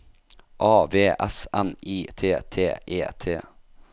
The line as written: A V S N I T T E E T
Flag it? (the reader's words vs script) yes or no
yes